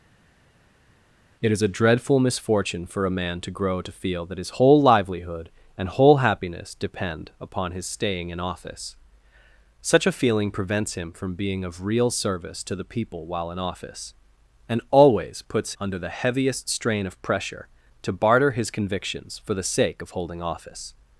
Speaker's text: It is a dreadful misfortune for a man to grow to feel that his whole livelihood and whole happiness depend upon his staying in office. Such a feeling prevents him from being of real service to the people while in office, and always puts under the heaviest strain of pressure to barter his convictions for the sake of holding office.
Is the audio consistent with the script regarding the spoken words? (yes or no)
yes